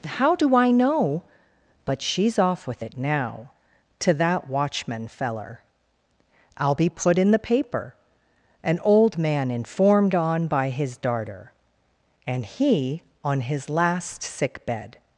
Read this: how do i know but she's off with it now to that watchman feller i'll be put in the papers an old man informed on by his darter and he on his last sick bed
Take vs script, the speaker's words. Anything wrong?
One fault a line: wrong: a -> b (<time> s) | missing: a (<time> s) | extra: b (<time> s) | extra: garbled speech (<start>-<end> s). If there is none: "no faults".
wrong: papers -> paper (7.4 s)